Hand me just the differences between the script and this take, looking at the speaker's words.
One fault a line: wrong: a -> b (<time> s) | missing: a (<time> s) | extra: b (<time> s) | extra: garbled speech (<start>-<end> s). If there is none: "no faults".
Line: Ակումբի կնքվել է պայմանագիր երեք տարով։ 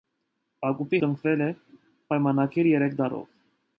no faults